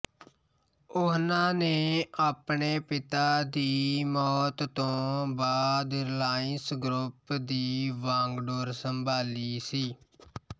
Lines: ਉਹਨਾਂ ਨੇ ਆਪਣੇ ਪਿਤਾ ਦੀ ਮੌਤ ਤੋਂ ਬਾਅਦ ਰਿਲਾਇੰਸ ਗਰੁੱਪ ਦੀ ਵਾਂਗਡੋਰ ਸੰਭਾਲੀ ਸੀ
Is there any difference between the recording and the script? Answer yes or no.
no